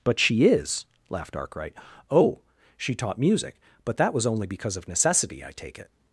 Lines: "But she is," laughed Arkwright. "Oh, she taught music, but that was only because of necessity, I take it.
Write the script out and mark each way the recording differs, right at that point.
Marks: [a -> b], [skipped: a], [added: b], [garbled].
"But she is," laughed Arkwright. "Oh, she taught music, but that was only because of necessity, I take it.